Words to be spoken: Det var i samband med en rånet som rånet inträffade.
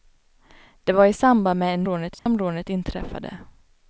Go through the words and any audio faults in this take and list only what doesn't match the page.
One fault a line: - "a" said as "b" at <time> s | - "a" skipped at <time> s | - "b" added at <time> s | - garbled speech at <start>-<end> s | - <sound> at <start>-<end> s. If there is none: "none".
- dropout at 2.2-2.3 s